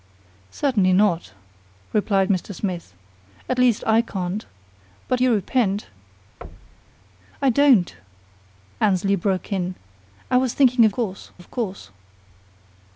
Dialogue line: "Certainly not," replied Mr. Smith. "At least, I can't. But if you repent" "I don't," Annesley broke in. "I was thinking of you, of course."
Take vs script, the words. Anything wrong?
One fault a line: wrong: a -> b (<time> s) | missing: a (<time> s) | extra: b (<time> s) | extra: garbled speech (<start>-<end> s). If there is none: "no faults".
missing: if (5.2 s)
wrong: you -> course (10.9 s)